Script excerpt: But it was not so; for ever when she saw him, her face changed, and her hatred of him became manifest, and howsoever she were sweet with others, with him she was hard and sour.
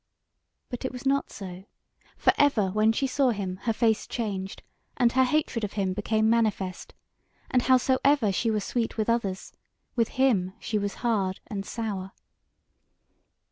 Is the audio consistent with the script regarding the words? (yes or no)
yes